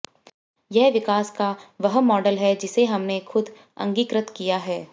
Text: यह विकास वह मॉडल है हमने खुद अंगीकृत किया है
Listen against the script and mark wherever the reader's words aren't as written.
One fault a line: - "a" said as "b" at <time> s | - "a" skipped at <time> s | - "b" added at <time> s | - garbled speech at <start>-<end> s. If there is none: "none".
- "का" added at 1.3 s
- "जिसे" added at 2.5 s